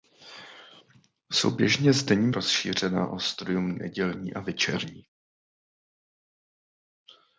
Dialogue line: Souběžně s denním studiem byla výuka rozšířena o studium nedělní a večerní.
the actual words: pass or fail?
fail